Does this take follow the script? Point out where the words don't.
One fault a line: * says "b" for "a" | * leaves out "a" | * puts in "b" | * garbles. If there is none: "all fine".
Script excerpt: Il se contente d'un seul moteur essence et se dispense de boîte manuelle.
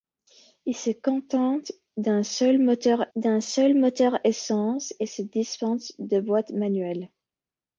* puts in "d'un seul moteur"